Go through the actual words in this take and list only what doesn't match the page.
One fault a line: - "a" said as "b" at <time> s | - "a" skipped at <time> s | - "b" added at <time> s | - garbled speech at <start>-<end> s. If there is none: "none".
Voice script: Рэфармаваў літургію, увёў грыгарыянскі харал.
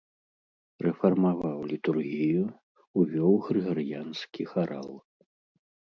none